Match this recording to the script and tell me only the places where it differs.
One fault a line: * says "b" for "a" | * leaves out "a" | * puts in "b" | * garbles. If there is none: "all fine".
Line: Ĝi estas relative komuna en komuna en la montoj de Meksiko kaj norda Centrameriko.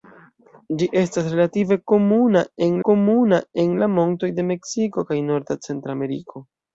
all fine